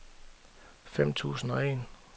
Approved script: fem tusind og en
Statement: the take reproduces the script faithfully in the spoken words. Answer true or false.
true